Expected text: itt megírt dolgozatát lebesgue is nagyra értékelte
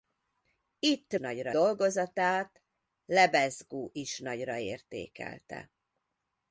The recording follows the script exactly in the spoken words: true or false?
false